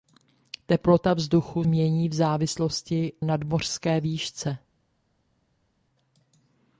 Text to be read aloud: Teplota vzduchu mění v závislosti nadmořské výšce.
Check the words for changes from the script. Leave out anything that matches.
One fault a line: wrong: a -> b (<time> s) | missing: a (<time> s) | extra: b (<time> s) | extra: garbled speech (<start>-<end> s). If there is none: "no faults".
no faults